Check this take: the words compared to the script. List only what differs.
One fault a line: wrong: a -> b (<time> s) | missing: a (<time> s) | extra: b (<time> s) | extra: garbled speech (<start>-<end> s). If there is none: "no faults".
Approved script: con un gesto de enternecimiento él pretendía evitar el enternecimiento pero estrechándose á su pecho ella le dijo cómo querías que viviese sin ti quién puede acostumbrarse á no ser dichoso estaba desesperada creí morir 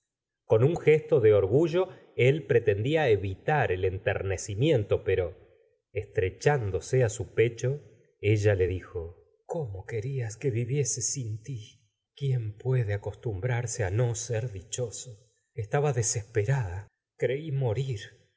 wrong: enternecimiento -> orgullo (1.3 s)